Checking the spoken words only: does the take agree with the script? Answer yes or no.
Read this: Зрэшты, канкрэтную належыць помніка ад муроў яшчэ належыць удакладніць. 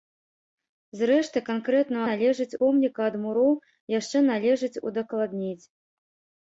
yes